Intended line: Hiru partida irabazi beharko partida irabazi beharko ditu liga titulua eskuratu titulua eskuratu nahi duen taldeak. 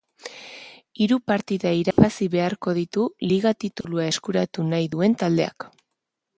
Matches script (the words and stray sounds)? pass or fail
fail